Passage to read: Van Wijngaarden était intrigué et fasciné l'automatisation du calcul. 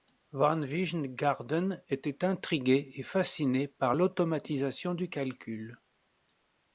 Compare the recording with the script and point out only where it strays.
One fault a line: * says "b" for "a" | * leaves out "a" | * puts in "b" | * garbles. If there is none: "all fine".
* puts in "par"